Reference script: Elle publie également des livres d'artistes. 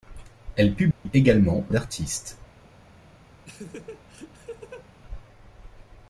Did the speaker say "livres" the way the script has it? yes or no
no